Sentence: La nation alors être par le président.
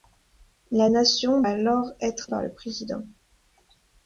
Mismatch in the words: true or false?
false